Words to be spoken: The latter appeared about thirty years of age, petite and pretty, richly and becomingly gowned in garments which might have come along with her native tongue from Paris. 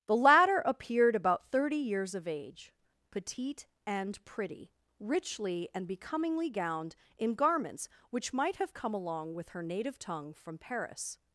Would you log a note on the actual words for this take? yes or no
no